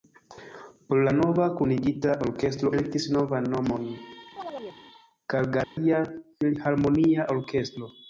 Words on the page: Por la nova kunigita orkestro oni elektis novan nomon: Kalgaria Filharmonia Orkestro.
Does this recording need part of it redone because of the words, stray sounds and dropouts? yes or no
yes